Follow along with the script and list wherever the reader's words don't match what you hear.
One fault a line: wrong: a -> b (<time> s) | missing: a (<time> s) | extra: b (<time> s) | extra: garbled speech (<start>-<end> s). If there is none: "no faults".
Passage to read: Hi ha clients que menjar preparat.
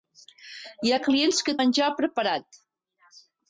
no faults